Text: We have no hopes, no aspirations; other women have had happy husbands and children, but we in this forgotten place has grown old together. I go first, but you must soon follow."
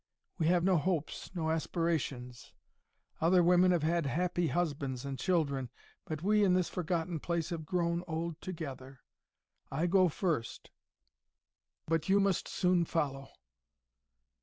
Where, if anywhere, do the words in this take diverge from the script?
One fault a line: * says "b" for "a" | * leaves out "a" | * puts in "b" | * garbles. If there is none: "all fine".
* says "have" for "has"